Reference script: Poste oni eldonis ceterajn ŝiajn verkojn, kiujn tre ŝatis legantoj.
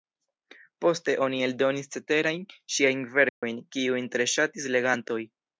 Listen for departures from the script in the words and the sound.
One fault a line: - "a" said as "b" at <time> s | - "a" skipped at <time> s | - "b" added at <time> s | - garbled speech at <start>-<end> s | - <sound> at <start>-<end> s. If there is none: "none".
- dropout at 3.3-3.4 s